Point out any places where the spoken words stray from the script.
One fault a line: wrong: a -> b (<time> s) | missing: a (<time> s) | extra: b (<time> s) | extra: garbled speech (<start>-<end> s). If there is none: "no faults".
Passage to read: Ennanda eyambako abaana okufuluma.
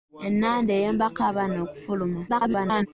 extra: garbled speech (2.3-2.9 s)